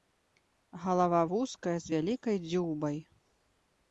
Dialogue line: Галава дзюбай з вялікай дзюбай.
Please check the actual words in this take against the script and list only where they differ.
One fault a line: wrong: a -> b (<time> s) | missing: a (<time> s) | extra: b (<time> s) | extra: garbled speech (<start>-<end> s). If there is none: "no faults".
wrong: дзюбай -> вузкая (1.3 s)